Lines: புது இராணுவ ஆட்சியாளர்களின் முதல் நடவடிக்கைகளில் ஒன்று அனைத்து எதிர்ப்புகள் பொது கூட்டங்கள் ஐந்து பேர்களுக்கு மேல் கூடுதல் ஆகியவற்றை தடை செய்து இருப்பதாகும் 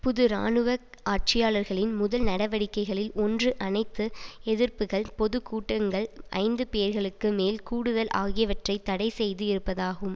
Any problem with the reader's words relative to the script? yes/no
no